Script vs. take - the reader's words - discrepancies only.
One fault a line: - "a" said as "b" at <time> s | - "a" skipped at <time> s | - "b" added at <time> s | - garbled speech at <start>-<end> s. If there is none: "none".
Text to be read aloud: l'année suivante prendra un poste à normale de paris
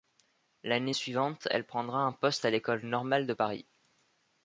- "elle" added at 1.5 s
- "l'école" added at 2.5 s